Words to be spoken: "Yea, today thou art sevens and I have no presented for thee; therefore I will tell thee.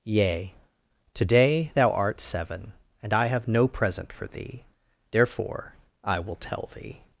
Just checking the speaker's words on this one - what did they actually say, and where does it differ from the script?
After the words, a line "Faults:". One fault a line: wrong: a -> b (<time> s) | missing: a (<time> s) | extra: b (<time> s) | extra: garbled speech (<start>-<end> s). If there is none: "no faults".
"Yea, today thou art seven and I have no present for thee; therefore I will tell thee.
Faults:
wrong: sevens -> seven (2.2 s)
wrong: presented -> present (3.7 s)